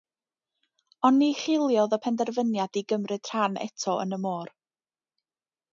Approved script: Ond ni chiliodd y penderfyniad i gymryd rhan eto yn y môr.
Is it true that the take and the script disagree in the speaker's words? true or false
false